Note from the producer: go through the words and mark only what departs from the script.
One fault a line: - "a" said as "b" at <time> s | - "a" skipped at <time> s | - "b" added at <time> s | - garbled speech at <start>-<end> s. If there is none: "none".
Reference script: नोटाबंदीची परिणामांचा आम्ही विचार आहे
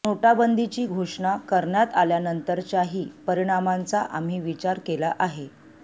- "घोषणा करण्यात आल्यानंतरच्याही" added at 0.9 s
- "केला" added at 4.8 s